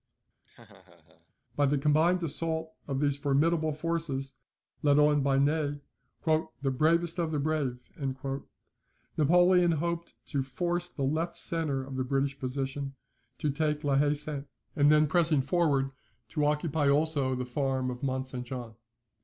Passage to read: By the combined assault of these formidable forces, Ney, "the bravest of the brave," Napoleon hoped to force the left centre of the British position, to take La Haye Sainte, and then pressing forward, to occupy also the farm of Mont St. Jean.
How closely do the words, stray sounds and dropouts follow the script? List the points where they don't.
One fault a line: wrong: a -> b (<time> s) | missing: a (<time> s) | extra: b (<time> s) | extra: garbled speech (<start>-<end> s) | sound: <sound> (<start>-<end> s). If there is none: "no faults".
sound: laugh (0.4-1.3 s)
extra: led on by (4.8 s)